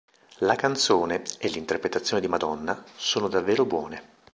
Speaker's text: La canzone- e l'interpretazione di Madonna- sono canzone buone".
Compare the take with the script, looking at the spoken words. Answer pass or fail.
fail